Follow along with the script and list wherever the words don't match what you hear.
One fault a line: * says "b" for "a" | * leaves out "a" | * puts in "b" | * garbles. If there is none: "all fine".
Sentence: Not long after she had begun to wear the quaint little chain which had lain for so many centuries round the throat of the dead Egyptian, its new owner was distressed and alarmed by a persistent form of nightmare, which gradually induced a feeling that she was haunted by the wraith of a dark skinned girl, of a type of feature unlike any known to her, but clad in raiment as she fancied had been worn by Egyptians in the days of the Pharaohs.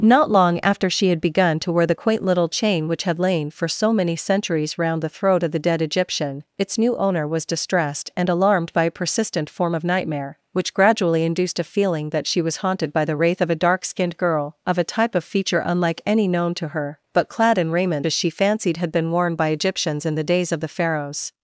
all fine